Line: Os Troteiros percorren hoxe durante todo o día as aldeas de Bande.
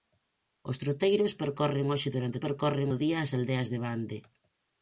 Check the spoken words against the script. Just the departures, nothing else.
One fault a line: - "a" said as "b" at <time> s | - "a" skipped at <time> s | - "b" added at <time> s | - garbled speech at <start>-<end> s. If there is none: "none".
- "todo" said as "percorren" at 2.4 s